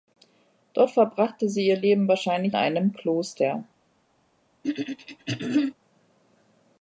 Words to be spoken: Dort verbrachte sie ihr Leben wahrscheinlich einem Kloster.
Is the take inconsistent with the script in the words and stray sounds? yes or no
yes